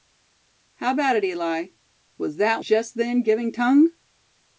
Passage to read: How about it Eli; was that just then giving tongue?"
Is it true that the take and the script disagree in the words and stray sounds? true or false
false